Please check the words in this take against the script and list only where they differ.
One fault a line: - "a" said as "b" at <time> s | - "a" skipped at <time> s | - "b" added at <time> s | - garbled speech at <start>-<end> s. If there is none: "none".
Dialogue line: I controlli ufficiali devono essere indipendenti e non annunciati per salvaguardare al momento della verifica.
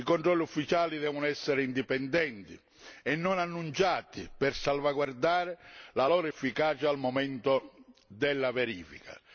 - "la loro efficacia" added at 5.9 s